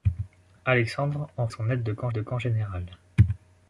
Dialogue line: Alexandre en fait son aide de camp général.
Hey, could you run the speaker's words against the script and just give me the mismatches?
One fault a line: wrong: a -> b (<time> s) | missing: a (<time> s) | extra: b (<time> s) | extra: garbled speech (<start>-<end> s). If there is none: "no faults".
missing: fait (1.5 s)
extra: de camp (2.1 s)